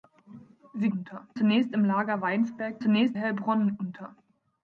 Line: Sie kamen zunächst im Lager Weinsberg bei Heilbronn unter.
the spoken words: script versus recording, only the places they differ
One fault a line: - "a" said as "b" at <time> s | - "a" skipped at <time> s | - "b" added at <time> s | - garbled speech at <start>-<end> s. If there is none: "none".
- "kamen" said as "unter" at 0.9 s
- "bei" said as "zunächst" at 2.8 s